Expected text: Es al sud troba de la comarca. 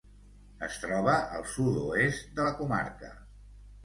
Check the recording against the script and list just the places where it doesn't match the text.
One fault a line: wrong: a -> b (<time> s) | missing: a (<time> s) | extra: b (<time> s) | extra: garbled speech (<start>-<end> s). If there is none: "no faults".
extra: troba (0.8 s)
wrong: troba -> oest (1.8 s)